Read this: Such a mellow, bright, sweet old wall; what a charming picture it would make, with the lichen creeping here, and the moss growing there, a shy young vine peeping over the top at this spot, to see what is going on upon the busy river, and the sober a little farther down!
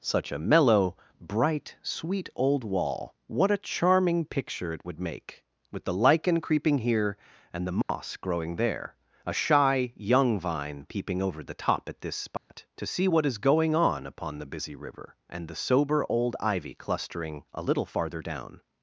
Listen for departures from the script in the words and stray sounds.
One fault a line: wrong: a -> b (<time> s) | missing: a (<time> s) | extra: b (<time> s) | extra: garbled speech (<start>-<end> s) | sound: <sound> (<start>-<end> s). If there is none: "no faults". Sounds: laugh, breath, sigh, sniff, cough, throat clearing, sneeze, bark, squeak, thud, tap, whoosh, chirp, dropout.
sound: dropout (7.8-7.9 s)
sound: dropout (12.4-12.5 s)
extra: old ivy clustering (16.1 s)